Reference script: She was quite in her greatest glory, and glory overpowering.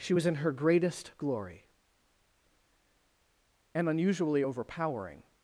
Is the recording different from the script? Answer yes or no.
yes